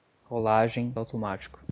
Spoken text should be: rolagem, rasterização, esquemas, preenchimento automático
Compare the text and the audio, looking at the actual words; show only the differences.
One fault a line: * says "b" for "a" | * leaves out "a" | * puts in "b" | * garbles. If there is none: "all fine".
* leaves out "rasterização esquemas preenchimento"